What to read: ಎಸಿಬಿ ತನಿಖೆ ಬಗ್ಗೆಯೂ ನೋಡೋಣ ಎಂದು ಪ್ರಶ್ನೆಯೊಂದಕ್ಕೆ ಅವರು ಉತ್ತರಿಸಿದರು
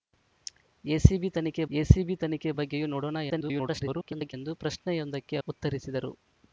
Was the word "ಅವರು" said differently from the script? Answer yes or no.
yes